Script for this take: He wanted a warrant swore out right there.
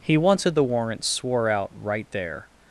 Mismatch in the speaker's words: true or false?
true